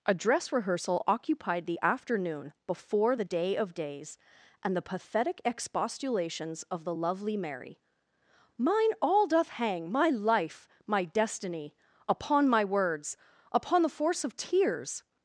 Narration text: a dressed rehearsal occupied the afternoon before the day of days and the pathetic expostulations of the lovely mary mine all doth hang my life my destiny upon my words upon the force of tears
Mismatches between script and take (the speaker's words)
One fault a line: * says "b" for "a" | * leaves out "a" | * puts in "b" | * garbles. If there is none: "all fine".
* says "dress" for "dressed"